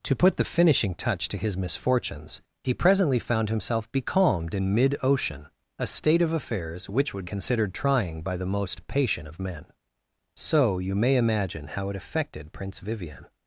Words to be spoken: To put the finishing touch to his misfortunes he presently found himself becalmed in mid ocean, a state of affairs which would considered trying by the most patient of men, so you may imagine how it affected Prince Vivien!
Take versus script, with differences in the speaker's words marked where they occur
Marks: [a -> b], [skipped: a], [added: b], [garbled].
To put the finishing touch to his misfortunes he presently found himself becalmed in mid ocean, a state of affairs which would considered trying by the most patient of men, so you may imagine how it affected Prince Vivien!